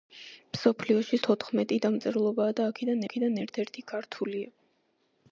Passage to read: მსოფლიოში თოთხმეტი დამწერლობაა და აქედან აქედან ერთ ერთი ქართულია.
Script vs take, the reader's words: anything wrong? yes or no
no